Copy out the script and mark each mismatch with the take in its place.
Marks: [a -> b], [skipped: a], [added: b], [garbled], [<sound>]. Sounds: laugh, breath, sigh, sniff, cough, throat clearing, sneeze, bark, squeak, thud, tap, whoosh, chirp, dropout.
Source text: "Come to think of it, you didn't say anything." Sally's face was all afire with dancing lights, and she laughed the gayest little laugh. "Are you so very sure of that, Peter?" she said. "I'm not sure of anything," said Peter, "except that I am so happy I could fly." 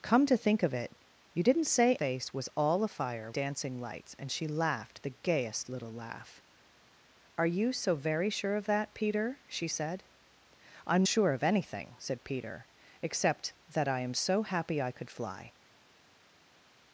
"Come to think of it, you didn't say [skipped: anything." Sally's] face was all afire [skipped: with] dancing lights, and she laughed the gayest little laugh. "Are you so very sure of that, Peter?" she said. "I'm [skipped: not] sure of anything," said Peter, "except that I am so happy I could fly."